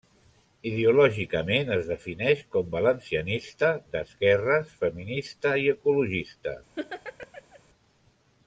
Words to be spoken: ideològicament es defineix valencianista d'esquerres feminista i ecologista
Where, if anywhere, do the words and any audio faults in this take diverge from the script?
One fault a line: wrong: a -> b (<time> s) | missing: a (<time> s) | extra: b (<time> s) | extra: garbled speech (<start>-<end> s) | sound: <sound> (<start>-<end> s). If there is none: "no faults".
extra: com (2.5 s)
sound: laugh (6.8-7.6 s)